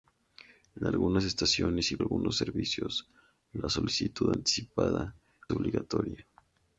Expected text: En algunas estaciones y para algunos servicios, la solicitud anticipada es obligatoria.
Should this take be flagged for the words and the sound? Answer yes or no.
yes